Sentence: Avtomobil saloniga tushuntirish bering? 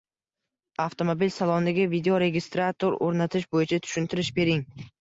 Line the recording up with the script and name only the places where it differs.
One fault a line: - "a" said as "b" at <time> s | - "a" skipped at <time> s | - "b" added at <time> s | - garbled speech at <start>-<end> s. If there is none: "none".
- "videoregistrator o‘rnatish bo‘yicha" added at 1.9 s